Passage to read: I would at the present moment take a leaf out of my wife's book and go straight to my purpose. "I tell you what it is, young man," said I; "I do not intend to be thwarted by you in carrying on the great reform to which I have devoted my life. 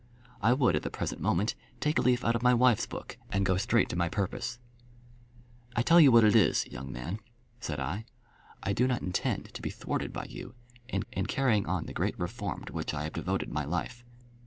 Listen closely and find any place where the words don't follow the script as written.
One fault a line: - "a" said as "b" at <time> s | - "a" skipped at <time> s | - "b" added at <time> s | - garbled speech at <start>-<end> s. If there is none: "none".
- "in" added at 11.1 s